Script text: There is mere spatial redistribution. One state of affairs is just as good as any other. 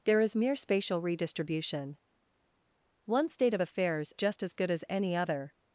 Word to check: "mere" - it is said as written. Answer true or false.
true